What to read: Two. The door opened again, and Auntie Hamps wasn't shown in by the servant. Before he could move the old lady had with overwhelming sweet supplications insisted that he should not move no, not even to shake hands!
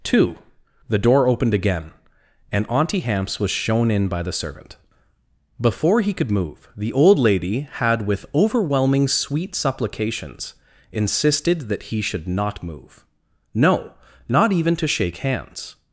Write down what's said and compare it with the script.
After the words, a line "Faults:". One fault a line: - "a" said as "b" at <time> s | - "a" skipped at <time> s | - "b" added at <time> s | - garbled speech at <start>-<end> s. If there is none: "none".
Two. The door opened again, and Auntie Hamps was shown in by the servant. Before he could move the old lady had with overwhelming sweet supplications insisted that he should not move no, not even to shake hands!
Faults:
- "wasn't" said as "was" at 3.4 s